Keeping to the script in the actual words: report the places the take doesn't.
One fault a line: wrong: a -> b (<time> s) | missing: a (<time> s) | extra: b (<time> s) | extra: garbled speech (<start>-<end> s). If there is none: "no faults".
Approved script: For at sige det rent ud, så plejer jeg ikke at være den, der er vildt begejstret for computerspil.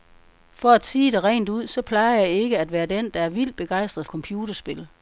missing: for (4.0 s)